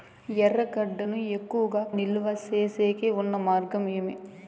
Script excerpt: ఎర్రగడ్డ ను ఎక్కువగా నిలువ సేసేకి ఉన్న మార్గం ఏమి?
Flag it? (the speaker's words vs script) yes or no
no